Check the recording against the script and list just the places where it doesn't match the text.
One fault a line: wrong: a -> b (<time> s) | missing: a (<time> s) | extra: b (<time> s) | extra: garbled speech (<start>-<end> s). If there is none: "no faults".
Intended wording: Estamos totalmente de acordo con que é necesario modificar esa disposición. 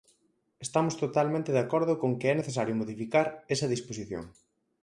no faults